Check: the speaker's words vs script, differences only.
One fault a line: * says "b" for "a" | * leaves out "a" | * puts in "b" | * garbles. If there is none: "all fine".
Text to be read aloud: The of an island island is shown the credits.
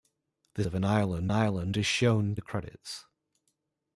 all fine